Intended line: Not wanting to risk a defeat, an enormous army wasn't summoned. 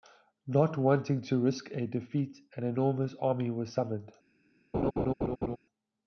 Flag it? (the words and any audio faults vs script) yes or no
yes